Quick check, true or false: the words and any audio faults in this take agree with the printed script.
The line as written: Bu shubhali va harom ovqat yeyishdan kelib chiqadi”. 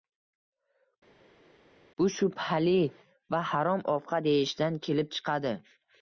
true